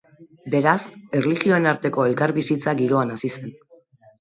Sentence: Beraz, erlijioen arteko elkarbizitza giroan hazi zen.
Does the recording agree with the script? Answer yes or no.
yes